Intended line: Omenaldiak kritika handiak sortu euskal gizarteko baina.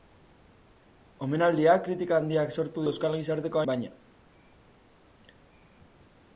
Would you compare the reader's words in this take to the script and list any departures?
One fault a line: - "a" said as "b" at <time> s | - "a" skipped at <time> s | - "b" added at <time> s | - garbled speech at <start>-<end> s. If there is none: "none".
none